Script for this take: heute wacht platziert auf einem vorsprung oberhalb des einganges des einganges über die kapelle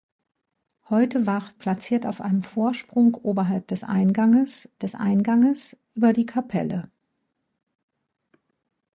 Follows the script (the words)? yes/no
yes